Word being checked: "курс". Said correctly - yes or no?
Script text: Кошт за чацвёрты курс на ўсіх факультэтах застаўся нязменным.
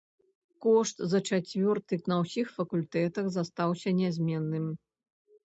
no